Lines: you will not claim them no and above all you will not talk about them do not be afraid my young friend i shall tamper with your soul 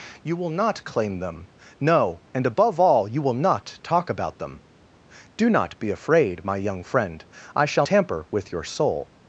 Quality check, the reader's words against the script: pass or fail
pass